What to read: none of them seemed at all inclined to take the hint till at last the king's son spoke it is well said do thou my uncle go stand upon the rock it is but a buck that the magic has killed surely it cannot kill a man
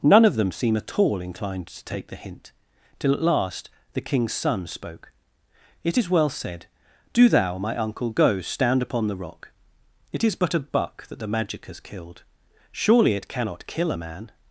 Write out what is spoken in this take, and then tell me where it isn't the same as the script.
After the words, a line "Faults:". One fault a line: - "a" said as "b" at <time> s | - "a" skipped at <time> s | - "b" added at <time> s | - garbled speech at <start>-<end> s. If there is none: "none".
none of them seem at all inclined to take the hint till at last the king's son spoke it is well said do thou my uncle go stand upon the rock it is but a buck that the magic has killed surely it cannot kill a man
Faults:
- "seemed" said as "seem" at 0.5 s